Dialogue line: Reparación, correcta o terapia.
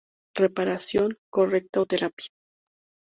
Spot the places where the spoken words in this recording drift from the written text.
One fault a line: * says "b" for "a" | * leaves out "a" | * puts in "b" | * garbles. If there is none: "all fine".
all fine